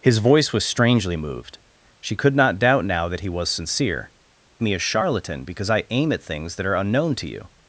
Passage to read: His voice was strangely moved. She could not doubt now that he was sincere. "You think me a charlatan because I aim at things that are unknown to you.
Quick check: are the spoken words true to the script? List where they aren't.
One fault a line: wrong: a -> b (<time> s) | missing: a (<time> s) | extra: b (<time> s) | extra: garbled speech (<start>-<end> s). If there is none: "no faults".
missing: You think (4.1 s)